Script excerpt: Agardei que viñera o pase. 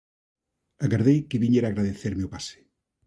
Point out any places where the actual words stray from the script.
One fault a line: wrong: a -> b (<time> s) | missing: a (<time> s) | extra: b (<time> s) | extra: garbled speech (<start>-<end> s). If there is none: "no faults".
extra: agradecerme (1.7 s)